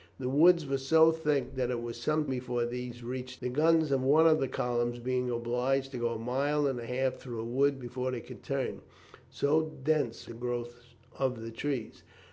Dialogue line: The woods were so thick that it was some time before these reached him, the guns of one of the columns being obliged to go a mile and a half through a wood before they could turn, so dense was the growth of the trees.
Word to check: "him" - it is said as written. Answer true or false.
false